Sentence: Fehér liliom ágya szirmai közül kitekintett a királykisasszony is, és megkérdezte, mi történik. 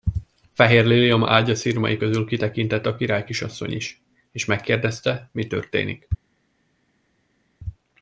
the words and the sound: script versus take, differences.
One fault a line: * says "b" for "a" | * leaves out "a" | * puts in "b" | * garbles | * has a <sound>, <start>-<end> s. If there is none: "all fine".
all fine